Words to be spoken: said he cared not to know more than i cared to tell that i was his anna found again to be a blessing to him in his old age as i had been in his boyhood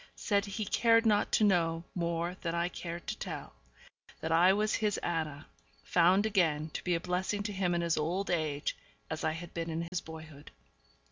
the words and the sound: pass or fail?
fail